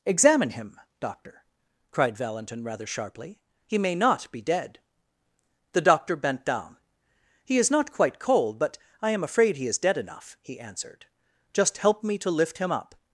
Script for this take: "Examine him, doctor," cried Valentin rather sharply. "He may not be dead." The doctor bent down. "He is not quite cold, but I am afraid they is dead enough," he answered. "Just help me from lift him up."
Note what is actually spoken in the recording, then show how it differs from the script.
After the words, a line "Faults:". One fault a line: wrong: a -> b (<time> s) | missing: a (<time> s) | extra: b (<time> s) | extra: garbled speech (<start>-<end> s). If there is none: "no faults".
"Examine him, doctor," cried Valentin rather sharply. "He may not be dead." The doctor bent down. "He is not quite cold, but I am afraid he is dead enough," he answered. "Just help me to lift him up."
Faults:
wrong: they -> he (9.6 s)
wrong: from -> to (12.2 s)